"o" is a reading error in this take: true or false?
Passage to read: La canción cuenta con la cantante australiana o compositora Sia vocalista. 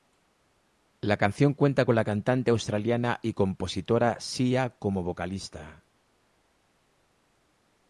true